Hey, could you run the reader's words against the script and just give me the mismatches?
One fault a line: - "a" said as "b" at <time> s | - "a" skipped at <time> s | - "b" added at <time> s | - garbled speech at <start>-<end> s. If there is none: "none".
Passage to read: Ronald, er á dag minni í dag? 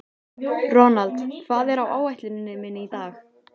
- "hvað" added at 1.5 s
- "dag" said as "áætluninni" at 2.0 s